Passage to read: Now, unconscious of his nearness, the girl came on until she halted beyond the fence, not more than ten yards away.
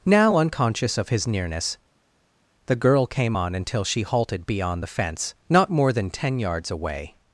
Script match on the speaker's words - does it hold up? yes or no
yes